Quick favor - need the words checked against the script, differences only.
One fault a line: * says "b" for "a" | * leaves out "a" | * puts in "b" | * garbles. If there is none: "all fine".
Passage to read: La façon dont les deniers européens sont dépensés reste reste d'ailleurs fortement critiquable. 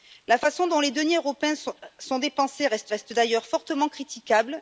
all fine